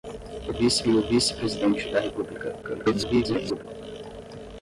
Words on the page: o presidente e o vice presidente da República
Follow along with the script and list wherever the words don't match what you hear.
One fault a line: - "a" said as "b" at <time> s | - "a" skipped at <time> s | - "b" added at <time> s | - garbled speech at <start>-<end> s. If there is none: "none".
- "presidente" said as "vice" at 0.5 s
- garbled speech at 2.6-3.7 s